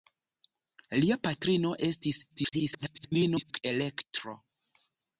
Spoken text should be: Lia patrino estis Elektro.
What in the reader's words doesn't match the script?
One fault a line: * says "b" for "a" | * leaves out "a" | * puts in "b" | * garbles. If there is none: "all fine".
* garbles